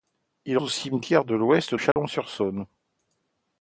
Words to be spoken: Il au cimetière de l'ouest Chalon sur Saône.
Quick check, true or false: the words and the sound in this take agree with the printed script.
false